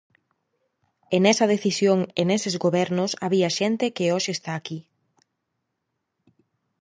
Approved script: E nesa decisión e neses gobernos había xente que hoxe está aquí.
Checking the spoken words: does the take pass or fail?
pass